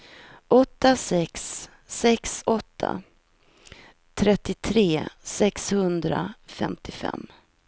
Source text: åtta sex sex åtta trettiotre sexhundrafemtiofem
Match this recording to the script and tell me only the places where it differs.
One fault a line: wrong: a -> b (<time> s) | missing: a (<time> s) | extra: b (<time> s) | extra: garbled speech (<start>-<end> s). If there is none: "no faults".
no faults